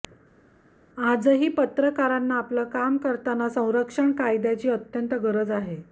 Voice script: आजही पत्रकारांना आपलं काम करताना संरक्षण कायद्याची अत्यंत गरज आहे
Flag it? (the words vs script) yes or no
no